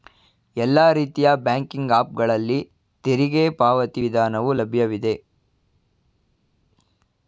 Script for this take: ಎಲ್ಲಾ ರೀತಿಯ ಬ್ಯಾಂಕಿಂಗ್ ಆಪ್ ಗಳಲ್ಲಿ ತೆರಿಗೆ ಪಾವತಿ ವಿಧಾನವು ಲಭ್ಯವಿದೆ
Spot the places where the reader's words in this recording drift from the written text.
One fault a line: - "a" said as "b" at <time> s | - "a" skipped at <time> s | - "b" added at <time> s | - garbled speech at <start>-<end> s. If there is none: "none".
none